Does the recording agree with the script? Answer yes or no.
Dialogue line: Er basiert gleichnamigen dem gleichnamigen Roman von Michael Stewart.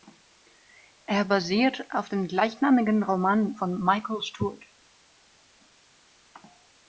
no